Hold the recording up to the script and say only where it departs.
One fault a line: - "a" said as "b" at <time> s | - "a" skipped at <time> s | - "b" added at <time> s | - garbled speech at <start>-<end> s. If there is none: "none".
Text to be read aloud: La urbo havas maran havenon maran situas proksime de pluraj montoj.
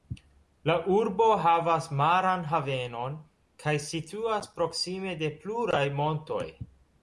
- "maran" said as "kaj" at 3.6 s